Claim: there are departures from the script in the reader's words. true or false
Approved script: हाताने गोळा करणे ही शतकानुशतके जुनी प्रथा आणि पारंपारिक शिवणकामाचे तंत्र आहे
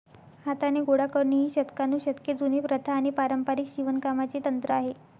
false